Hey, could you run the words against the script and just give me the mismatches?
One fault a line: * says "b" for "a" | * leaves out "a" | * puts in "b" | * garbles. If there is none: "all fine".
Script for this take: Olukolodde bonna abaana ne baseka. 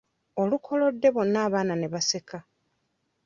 all fine